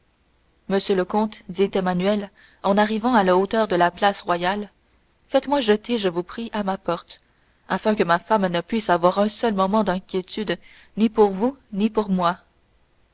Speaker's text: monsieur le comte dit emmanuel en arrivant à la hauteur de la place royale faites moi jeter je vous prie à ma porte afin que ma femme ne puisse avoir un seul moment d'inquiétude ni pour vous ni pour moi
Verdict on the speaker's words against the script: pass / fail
pass